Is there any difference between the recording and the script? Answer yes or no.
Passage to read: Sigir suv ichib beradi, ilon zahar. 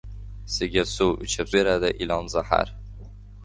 no